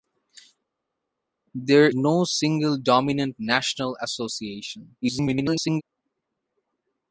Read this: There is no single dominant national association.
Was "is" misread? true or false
true